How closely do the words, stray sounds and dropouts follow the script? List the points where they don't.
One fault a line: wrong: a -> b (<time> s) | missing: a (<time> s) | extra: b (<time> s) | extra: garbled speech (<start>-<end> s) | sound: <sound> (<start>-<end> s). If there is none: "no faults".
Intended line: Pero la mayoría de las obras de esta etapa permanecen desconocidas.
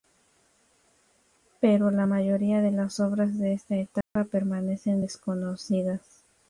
sound: dropout (4.0-4.2 s)